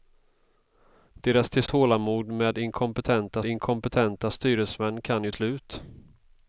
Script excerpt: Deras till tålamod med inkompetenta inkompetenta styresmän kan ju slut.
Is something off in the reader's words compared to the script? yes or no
no